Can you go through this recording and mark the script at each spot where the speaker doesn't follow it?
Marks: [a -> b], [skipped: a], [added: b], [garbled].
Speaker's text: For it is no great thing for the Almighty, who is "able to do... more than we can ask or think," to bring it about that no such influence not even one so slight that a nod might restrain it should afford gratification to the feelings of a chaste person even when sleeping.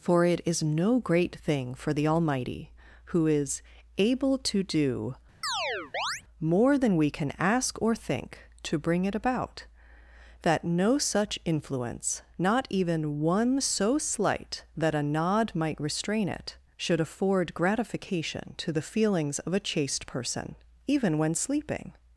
For it is no great thing for the Almighty, who is "able to do... more than we can ask or think," to bring it about that no such influence not even one so slight that a nod might restrain it should afford gratification to the feelings of a chaste person even when sleeping.